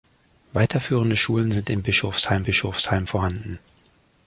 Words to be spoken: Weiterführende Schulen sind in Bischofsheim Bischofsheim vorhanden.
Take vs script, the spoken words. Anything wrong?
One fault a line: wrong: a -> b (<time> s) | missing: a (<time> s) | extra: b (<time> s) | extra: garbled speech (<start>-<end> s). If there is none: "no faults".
no faults